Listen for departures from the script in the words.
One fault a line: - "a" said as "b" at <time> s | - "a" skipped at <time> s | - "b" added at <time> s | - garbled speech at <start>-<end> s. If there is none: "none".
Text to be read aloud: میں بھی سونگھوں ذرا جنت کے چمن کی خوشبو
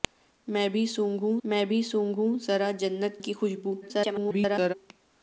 - "میں بھی سونگھوں" added at 1.4 s
- "کے چمن" skipped at 3.2 s
- garbled speech at 3.8-4.7 s